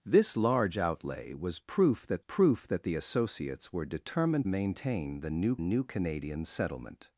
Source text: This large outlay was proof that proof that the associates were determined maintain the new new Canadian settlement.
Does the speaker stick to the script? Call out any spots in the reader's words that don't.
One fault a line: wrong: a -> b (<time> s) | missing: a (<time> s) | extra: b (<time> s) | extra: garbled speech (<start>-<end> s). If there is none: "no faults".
no faults